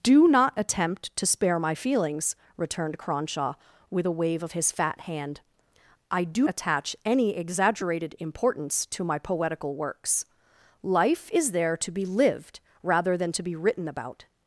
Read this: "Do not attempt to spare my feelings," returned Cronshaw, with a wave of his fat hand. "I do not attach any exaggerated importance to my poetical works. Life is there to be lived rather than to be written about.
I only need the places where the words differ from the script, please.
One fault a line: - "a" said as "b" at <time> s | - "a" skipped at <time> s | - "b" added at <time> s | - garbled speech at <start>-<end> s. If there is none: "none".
- "not" skipped at 6.5 s